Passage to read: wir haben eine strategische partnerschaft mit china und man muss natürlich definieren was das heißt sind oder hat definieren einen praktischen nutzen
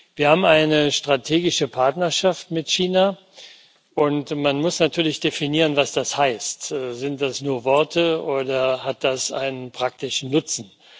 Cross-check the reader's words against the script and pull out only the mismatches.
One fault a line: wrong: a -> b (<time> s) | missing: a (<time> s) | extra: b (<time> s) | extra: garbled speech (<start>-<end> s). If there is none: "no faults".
extra: das nur worte (7.2 s)
wrong: definieren -> das (9.0 s)